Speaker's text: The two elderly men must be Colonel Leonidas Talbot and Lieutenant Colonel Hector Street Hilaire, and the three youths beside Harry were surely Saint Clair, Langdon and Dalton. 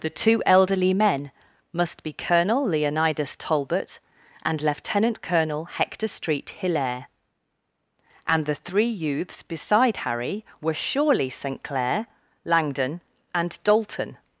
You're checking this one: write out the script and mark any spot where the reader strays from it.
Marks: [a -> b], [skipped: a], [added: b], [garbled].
The two elderly men must be Colonel Leonidas Talbot and Lieutenant Colonel Hector Street Hilaire, and the three youths beside Harry were surely Saint Clair, Langdon and Dalton.